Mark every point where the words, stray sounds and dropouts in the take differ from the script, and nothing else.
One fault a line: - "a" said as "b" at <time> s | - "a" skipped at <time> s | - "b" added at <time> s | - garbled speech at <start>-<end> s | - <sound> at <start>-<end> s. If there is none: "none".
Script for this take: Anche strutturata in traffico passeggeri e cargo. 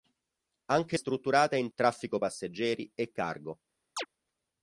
- chirp at 4.0-4.1 s